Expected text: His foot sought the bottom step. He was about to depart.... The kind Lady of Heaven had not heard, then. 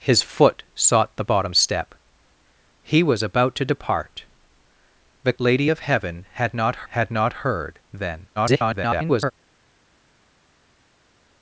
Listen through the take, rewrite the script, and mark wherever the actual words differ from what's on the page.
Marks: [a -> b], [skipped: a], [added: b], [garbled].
His foot sought the bottom step. He was about to depart.... The [skipped: kind] Lady of Heaven had not [added: had not] heard, then. [garbled]